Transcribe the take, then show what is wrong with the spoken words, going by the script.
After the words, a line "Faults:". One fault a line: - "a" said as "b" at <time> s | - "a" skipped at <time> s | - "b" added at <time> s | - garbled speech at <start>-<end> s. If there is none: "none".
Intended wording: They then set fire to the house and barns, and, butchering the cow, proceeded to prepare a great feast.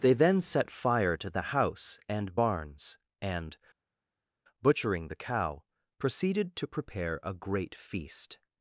They then set fire to the house and barns, and, butchering the cow, proceeded to prepare a great feast.
Faults:
none